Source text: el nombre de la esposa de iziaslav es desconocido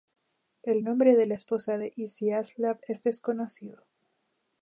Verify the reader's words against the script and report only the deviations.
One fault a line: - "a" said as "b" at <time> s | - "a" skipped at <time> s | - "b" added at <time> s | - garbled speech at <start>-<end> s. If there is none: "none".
none